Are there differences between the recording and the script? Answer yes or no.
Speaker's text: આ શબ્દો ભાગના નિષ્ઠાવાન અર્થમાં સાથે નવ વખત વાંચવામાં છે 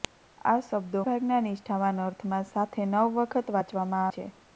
no